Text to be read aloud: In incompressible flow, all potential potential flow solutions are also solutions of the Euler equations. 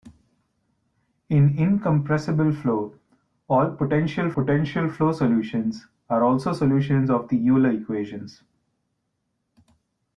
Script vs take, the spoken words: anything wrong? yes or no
no